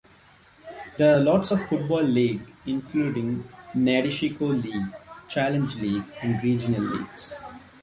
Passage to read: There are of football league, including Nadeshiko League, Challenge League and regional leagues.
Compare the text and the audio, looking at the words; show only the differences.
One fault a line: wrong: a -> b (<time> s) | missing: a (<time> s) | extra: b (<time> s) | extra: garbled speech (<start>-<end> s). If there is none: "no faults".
extra: lots (1.2 s)